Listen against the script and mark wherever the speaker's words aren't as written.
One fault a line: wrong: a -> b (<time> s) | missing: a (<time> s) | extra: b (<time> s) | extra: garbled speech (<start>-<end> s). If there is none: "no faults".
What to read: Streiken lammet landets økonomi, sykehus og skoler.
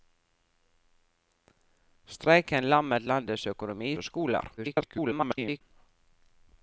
missing: sykehus (4.0 s)
extra: garbled speech (4.6-5.6 s)